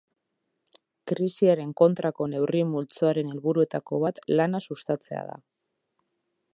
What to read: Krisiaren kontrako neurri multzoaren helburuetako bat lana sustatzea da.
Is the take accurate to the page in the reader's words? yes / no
yes